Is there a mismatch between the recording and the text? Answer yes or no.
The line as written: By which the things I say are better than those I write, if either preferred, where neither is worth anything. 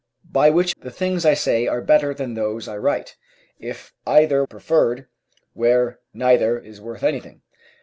no